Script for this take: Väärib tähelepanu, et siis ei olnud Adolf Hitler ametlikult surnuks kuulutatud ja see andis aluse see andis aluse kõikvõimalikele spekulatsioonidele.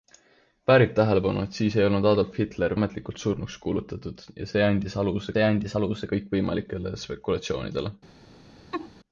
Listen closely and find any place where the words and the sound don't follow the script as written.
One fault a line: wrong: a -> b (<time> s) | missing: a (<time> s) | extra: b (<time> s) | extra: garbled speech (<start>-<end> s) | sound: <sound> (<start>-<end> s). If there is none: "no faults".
sound: laugh (8.7-8.9 s)